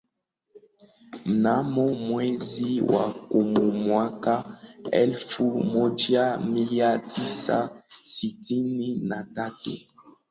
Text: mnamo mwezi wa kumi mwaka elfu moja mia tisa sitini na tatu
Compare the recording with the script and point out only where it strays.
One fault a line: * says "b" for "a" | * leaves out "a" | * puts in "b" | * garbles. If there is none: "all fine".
all fine